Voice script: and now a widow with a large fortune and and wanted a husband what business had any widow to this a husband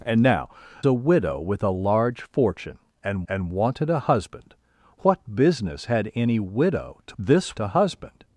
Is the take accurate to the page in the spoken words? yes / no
yes